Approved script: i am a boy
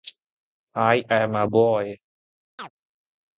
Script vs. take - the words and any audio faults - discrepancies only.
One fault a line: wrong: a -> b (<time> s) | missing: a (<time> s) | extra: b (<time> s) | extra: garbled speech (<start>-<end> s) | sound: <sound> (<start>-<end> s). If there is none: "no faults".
sound: chirp (2.6-2.7 s)